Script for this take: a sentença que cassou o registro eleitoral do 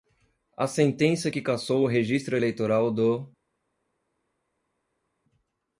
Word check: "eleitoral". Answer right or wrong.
right